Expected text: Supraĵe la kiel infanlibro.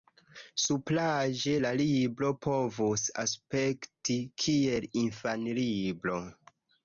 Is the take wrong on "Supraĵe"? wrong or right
right